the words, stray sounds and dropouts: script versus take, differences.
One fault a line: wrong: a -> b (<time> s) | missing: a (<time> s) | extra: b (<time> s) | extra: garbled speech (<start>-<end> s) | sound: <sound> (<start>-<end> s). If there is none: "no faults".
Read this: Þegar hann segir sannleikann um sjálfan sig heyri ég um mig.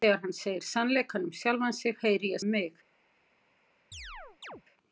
sound: chirp (3.9-4.6 s)